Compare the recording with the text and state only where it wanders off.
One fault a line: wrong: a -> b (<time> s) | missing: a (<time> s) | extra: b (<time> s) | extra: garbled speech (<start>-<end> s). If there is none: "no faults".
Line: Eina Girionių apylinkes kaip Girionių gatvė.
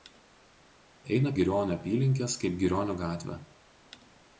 no faults